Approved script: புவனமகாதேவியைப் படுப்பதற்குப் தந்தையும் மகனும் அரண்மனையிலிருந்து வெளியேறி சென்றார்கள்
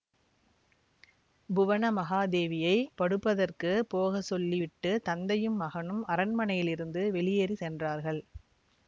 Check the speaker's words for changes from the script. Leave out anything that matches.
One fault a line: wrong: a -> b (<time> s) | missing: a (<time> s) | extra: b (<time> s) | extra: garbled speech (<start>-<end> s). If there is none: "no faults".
extra: போக சொல்லி விட்டு (3.9 s)